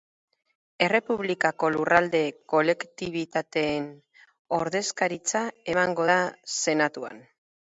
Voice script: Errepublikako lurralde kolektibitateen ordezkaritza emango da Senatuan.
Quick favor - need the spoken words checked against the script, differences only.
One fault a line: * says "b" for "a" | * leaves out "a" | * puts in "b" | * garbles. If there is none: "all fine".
all fine